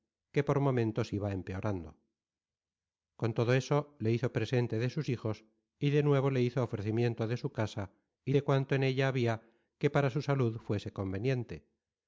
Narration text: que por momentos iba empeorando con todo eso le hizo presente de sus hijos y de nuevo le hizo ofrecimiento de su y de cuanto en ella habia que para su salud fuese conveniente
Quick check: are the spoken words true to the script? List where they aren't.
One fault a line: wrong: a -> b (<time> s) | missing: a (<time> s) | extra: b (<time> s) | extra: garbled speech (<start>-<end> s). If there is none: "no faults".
extra: casa (7.5 s)